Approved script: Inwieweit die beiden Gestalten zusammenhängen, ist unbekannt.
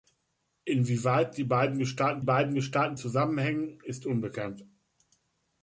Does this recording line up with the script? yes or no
no